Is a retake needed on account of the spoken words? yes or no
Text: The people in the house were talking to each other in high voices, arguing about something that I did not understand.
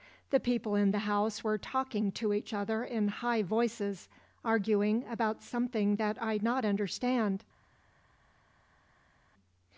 yes